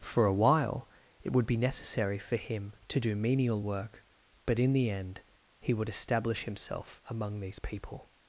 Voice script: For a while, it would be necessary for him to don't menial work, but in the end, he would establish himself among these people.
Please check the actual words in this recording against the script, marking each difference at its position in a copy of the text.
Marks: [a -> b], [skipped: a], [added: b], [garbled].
For a while, it would be necessary for him to [don't -> do] menial work, but in the end, he would establish himself among these people.